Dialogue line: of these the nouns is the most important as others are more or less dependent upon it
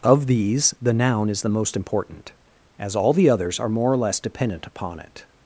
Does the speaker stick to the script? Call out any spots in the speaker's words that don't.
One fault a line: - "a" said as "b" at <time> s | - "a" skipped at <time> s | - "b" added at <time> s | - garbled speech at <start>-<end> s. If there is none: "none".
- "nouns" said as "noun" at 0.9 s
- "all the" added at 3.0 s